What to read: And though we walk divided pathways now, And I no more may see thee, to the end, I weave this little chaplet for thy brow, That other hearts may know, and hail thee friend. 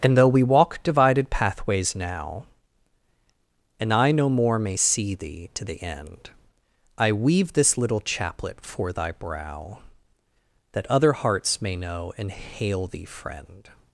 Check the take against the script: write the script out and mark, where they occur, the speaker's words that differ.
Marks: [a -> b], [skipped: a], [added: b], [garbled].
And though we walk divided pathways now, And I no more may see thee, to the end, I weave this little chaplet for thy brow, That other hearts may know, and hail thee friend.